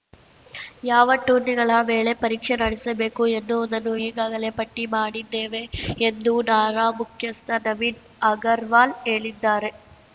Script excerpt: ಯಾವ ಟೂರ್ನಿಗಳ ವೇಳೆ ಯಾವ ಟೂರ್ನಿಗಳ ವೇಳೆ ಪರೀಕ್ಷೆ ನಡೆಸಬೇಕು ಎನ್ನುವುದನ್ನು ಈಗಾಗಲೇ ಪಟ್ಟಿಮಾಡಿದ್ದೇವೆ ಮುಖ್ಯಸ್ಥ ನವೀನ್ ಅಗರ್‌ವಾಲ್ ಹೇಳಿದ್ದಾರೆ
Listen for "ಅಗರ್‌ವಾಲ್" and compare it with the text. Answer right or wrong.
right